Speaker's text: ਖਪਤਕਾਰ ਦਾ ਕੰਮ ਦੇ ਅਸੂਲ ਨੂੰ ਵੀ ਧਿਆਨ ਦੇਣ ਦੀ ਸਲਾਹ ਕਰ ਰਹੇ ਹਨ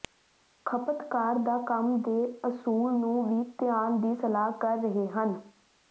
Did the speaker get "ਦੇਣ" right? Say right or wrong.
wrong